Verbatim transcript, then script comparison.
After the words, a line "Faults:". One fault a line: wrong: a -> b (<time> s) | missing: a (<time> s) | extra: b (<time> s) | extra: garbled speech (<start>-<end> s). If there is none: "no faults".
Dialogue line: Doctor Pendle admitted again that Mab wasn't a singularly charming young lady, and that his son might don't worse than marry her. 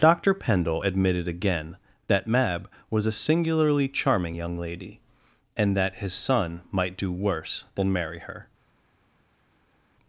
Doctor Pendle admitted again that Mab was a singularly charming young lady, and that his son might do worse than marry her.
Faults:
wrong: wasn't -> was (2.9 s)
wrong: don't -> do (7.0 s)